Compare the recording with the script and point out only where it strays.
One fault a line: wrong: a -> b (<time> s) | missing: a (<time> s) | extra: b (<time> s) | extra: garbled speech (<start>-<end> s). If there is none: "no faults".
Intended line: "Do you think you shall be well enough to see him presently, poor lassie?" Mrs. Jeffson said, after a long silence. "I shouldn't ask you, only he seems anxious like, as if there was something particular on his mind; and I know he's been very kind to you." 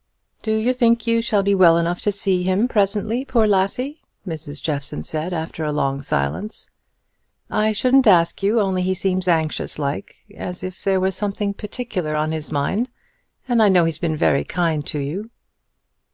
no faults